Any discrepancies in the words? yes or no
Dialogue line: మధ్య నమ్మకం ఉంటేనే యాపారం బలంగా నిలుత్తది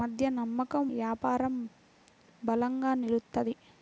yes